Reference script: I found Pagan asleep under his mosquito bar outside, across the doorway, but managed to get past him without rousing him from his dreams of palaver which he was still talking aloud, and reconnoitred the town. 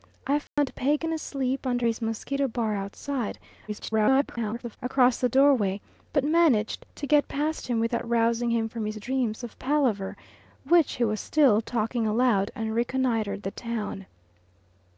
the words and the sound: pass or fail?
fail